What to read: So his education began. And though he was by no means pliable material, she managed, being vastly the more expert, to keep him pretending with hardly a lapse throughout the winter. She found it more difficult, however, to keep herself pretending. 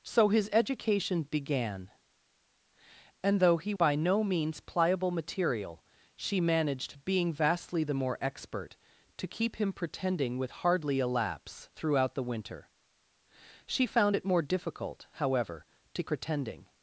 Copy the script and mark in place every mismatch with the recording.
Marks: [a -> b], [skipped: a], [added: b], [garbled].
So his education began. And though he [skipped: was] by no means pliable material, she managed, being vastly the more expert, to keep him pretending with hardly a lapse throughout the winter. She found it more difficult, however, to [skipped: keep herself] pretending.